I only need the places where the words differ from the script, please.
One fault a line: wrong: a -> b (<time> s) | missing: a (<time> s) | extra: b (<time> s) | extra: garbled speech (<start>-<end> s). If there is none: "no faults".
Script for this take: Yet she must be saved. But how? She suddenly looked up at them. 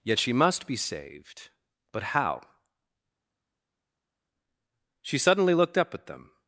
no faults